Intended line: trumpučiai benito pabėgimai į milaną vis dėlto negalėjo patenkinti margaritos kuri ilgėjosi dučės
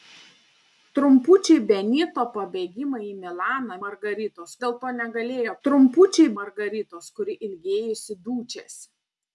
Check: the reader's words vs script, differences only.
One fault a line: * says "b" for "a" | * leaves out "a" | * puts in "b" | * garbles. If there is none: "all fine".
* says "margaritos" for "vis"
* says "trumpučiai" for "patenkinti"